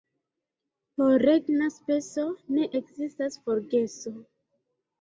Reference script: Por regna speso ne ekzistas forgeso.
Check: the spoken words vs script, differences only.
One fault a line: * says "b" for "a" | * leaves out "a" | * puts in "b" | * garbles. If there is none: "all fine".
all fine